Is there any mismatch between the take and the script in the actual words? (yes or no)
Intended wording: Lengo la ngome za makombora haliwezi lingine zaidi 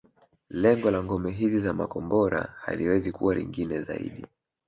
yes